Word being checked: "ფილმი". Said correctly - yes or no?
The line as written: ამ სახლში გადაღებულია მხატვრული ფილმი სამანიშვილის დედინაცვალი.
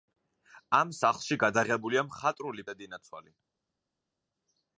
no